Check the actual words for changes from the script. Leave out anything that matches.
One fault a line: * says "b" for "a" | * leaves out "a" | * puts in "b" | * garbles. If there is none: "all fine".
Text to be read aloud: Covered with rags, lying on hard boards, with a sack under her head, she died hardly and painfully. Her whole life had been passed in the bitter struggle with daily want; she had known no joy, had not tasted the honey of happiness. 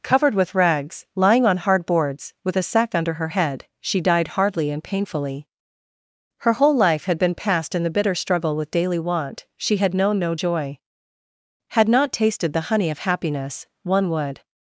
* puts in "One would"